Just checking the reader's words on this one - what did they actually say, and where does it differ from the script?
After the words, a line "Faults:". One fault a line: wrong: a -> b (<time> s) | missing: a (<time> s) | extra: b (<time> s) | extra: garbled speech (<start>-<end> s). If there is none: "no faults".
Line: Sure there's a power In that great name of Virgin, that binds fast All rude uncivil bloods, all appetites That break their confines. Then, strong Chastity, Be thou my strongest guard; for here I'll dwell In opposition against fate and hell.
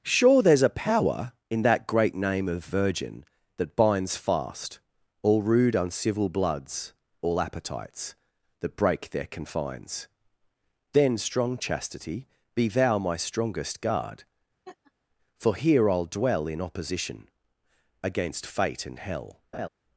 Sure there's a power In that great name of Virgin, that binds fast All rude uncivil bloods, all appetites That break their confines. Then, strong Chastity, Be thou my strongest guard; for here I'll dwell In opposition against fate and hell.
Faults:
no faults